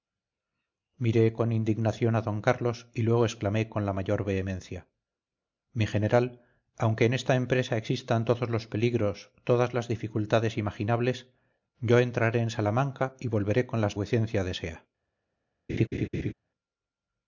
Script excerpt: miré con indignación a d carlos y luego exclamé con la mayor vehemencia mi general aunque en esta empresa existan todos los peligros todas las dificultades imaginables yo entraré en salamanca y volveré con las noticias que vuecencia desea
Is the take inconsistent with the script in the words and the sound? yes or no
yes